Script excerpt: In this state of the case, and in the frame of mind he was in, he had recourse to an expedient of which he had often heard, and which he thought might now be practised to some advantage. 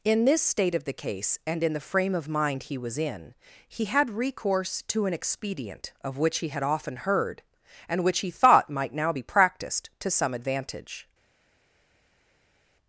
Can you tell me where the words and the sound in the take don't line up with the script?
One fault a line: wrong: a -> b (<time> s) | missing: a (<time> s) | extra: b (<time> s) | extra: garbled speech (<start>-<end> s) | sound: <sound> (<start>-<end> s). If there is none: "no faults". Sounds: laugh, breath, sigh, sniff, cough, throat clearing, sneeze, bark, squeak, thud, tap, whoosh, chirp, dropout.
no faults